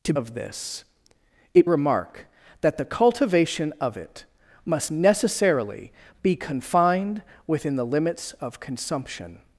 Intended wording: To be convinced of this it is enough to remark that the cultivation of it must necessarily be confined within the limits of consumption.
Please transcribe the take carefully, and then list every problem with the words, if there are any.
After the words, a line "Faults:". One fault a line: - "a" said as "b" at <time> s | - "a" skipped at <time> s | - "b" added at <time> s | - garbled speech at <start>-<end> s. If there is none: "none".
To of this it remark that the cultivation of it must necessarily be confined within the limits of consumption.
Faults:
- "be convinced" skipped at 0.1 s
- "is enough to" skipped at 1.7 s